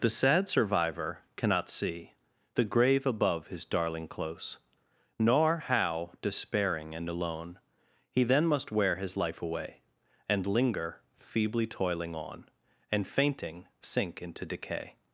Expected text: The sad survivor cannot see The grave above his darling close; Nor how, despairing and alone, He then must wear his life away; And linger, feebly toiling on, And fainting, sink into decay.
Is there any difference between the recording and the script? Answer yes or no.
no